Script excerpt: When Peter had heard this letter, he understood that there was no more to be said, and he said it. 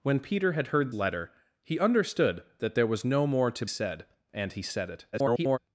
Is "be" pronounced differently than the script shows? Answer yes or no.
yes